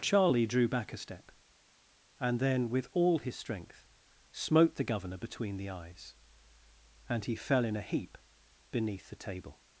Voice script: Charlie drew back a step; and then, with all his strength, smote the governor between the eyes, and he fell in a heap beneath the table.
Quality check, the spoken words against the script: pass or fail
pass